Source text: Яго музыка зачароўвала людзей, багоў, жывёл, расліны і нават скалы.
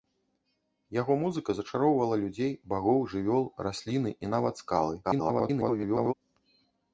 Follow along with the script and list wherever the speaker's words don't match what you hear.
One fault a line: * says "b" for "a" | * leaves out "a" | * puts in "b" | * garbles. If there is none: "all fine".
* garbles